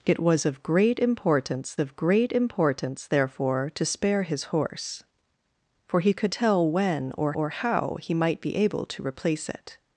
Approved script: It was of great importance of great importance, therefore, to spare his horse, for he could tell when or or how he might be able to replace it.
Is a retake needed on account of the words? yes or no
no